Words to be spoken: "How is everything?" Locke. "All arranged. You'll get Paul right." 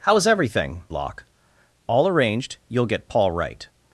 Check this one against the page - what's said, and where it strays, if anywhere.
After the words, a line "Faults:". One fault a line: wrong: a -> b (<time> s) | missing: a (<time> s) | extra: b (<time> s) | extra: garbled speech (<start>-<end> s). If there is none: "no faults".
"How is everything?" Locke. "All arranged. You'll get Paul right."
Faults:
no faults